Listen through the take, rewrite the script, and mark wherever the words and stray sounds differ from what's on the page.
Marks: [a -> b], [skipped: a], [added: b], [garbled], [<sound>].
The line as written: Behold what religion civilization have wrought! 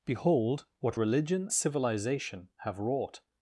Behold what religion civilization have wrought!